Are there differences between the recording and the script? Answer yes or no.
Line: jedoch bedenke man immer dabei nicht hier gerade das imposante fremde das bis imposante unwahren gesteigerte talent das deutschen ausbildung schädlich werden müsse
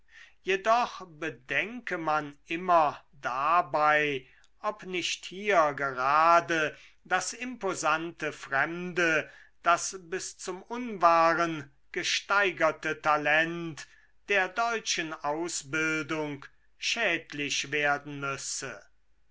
yes